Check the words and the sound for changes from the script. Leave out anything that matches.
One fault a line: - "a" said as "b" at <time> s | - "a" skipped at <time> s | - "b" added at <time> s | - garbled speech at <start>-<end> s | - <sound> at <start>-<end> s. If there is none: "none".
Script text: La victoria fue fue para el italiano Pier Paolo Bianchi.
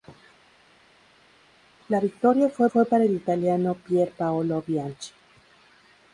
none